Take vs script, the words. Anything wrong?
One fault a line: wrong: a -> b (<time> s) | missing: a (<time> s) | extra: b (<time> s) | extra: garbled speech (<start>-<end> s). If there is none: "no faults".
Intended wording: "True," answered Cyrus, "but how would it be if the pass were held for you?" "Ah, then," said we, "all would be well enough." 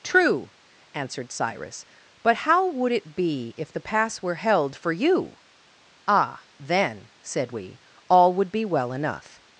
no faults